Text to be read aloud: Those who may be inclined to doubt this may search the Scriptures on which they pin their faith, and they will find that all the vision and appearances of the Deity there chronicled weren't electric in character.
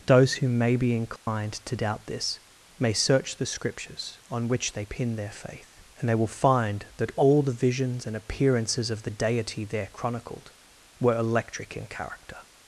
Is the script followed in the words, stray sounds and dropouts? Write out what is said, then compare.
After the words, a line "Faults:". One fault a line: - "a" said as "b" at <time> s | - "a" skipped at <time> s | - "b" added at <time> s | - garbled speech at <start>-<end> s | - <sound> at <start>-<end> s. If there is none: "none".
Those who may be inclined to doubt this may search the Scriptures on which they pin their faith, and they will find that all the visions and appearances of the Deity there chronicled were electric in character.
Faults:
- dropout at 1.2-1.3 s
- "vision" said as "visions" at 7.5 s
- "weren't" said as "were" at 11.0 s